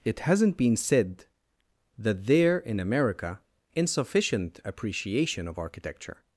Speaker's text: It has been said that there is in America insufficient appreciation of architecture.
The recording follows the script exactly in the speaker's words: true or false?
false